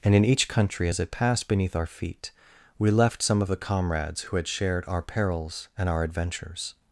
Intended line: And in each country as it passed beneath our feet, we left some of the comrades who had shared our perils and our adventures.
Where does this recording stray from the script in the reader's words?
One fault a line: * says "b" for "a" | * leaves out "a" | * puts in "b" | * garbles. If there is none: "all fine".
all fine